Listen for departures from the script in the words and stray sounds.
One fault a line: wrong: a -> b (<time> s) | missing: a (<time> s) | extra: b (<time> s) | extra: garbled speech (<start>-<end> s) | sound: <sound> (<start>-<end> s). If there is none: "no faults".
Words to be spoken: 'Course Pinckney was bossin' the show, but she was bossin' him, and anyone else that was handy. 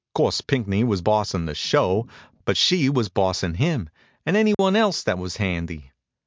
sound: dropout (4.5-4.6 s)